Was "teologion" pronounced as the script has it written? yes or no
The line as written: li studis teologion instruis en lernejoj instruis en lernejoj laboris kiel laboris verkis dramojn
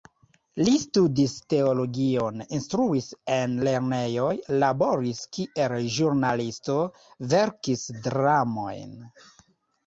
yes